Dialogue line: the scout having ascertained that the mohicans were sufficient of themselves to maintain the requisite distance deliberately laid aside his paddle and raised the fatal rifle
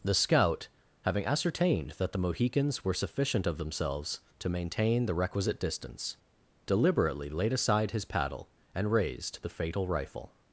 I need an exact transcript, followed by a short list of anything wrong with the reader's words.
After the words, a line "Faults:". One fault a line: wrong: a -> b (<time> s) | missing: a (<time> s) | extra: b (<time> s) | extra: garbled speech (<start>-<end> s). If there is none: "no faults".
the scout having ascertained that the mohicans were sufficient of themselves to maintain the requisite distance deliberately laid aside his paddle and raised the fatal rifle
Faults:
no faults